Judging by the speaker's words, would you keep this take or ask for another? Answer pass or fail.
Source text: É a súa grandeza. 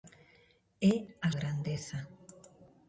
fail